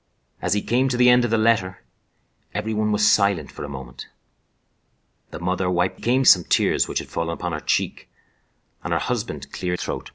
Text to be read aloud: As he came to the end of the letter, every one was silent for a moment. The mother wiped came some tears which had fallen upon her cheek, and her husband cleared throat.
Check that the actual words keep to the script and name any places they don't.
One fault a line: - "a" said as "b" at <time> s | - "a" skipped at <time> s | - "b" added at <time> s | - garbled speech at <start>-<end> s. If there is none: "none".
none